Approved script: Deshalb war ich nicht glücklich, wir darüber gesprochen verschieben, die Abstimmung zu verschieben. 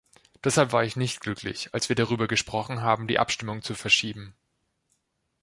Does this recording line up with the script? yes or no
no